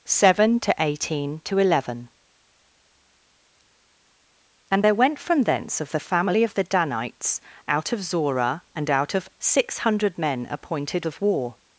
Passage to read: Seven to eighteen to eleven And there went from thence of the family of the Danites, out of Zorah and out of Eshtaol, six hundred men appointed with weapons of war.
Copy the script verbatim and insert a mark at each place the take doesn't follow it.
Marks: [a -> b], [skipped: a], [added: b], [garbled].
Seven to eighteen to eleven And there went from thence of the family of the Danites, out of Zorah and out of [skipped: Eshtaol,] six hundred men appointed [skipped: with weapons] of war.